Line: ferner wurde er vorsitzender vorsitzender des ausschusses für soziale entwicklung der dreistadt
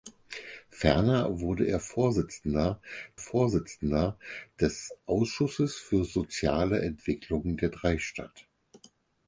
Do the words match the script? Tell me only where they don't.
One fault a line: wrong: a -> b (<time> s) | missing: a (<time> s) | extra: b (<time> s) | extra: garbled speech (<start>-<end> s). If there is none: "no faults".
no faults